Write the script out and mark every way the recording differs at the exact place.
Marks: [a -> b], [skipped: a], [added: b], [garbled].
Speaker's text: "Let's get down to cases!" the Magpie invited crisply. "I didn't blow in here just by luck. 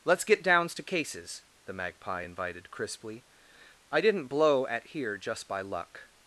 "Let's get [down -> downs] to cases!" the Magpie invited crisply. "I didn't blow [in -> at] here just by luck.